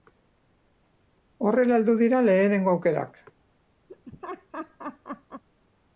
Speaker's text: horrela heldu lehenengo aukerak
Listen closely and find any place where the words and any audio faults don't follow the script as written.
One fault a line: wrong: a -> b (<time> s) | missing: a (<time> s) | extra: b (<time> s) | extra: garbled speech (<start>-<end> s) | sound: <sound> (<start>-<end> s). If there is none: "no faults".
extra: dira (2.0 s)
sound: laugh (3.9-5.4 s)